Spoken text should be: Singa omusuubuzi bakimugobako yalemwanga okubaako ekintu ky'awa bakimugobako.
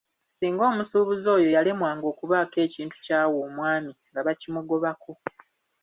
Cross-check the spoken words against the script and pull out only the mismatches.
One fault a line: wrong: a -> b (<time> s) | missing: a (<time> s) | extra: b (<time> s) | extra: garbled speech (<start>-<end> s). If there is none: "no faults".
wrong: bakimugobako -> oyo (1.4 s)
extra: omwami nga (3.5 s)